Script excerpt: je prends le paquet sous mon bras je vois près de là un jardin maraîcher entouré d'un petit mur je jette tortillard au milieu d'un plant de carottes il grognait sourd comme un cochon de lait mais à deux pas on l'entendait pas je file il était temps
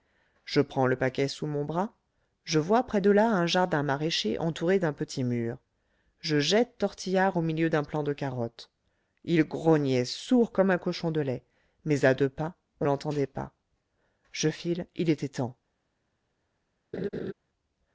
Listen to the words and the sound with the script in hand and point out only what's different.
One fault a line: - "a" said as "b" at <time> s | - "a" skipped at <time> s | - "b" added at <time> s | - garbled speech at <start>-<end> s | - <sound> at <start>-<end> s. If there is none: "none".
- laugh at 16.9-17.3 s